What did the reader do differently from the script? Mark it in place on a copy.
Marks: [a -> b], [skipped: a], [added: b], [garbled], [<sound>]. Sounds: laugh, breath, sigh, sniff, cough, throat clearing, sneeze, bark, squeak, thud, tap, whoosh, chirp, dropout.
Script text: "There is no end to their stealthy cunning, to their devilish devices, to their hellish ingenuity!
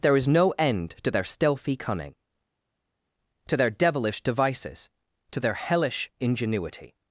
"There is no end to their stealthy cunning, to their devilish devices, to their hellish ingenuity!